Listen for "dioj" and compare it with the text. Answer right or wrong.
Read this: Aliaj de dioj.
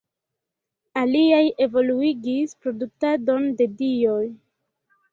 right